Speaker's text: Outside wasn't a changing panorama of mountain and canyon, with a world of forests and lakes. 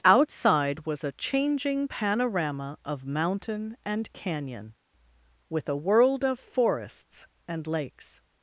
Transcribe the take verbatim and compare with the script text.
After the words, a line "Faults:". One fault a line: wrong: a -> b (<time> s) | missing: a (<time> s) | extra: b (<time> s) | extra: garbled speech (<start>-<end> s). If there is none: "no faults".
Outside was a changing panorama of mountain and canyon, with a world of forests and lakes.
Faults:
wrong: wasn't -> was (0.9 s)